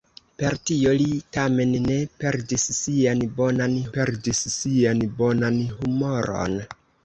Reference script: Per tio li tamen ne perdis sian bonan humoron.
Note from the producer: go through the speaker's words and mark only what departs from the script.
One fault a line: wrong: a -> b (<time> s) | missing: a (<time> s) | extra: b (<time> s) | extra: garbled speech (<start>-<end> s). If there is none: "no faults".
extra: perdis sian bonan (4.0 s)